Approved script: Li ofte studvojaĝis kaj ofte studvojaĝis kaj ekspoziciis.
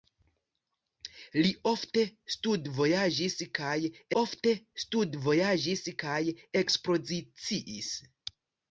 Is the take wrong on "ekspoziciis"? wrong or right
right